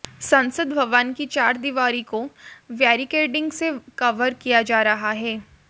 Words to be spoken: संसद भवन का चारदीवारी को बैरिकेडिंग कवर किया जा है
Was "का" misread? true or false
true